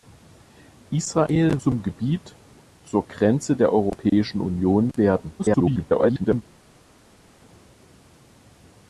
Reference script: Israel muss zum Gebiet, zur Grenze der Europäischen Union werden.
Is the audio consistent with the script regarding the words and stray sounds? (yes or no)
no